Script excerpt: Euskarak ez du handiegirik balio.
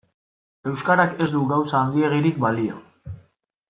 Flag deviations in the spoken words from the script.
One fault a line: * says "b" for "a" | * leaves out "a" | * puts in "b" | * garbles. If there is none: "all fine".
* puts in "gauza"